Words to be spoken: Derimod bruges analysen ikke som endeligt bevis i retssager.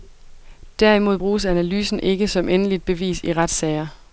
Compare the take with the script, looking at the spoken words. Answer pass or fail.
pass